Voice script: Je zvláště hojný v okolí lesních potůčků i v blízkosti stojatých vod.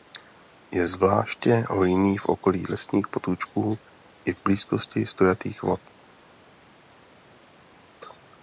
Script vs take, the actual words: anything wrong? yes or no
no